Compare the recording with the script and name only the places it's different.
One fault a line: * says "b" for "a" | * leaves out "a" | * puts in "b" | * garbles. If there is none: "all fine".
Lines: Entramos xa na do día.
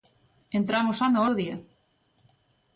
all fine